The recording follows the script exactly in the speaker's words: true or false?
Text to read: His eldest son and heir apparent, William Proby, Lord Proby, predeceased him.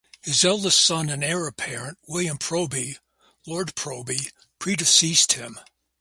true